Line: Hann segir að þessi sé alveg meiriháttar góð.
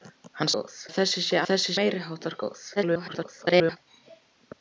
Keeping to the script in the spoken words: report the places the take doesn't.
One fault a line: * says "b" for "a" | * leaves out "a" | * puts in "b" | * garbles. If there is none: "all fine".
* says "góð" for "segir"
* says "þessi" for "alveg"
* garbles